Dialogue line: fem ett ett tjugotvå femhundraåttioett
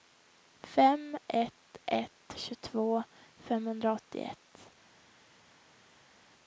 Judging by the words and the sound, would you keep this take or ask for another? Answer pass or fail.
pass